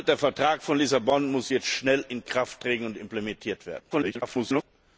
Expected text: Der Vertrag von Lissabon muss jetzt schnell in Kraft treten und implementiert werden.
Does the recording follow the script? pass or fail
fail